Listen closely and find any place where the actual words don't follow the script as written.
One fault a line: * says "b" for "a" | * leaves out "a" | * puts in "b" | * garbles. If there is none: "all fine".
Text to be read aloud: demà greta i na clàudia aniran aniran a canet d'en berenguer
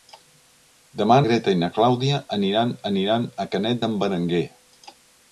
all fine